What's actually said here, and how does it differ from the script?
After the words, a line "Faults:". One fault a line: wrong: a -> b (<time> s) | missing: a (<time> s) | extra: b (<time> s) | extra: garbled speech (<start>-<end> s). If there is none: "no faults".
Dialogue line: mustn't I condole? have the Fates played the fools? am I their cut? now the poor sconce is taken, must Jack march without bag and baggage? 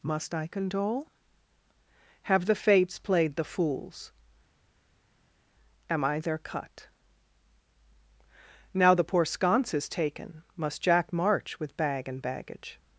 must I condole? have the Fates played the fools? am I their cut? now the poor sconce is taken, must Jack march with bag and baggage?
Faults:
wrong: mustn't -> must (0.0 s)
wrong: without -> with (11.6 s)